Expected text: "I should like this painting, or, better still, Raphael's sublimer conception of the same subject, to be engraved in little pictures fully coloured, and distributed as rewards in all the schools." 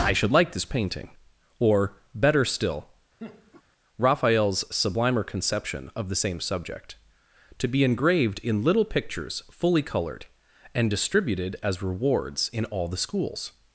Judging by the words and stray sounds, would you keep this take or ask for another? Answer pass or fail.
fail